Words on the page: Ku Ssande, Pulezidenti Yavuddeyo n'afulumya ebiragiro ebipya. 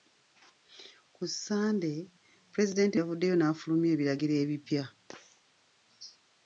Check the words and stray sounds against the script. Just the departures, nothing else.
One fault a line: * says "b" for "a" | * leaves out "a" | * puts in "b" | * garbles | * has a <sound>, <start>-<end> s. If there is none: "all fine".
all fine